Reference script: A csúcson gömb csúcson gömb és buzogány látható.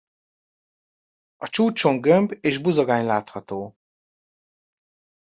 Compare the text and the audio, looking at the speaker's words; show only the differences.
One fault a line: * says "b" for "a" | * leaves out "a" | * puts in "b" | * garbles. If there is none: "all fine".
* leaves out "csúcson gömb"